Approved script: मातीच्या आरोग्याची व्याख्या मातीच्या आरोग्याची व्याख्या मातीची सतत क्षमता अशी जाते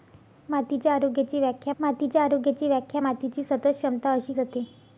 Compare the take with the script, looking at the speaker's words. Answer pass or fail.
pass